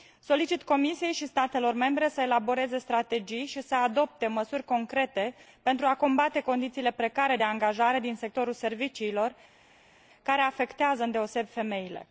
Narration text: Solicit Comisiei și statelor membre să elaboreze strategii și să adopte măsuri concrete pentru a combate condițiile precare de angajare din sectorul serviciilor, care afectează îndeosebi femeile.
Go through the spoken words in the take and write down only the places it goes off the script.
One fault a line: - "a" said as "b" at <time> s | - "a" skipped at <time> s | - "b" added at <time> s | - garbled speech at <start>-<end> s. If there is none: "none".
none